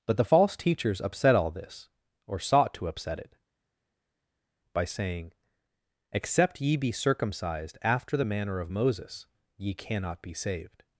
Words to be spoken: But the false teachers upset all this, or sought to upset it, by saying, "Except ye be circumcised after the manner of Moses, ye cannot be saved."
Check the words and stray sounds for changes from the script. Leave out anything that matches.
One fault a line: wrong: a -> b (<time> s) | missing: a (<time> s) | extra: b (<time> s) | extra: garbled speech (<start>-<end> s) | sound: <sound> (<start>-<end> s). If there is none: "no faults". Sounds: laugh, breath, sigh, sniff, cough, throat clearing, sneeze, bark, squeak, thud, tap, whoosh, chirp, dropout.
no faults